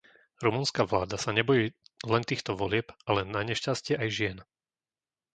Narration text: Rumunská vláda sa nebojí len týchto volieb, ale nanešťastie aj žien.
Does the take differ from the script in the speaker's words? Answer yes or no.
no